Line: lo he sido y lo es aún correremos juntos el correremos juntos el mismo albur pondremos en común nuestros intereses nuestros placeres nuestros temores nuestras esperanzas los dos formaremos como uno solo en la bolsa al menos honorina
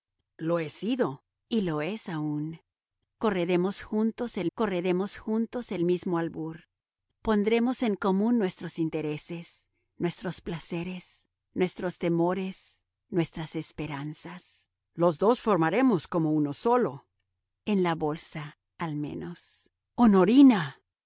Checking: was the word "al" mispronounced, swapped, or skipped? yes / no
no